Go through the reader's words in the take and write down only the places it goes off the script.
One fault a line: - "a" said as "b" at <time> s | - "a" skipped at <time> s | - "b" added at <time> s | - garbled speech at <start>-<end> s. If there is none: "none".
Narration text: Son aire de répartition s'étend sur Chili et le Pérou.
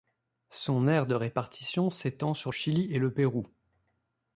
none